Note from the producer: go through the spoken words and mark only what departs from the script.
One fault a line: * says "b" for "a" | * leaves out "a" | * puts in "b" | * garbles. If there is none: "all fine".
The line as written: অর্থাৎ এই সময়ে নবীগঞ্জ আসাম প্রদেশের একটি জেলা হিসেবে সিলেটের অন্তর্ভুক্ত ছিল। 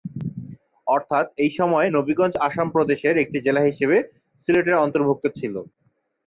all fine